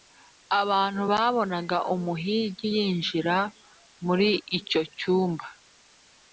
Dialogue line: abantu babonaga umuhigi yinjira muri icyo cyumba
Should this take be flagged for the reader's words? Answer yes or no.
no